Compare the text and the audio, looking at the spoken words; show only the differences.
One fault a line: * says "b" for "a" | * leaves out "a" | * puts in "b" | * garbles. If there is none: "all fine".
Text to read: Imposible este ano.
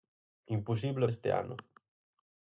all fine